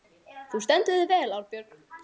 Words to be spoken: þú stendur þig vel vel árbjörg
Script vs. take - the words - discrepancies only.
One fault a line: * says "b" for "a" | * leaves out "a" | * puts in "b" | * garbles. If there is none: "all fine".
* leaves out "vel"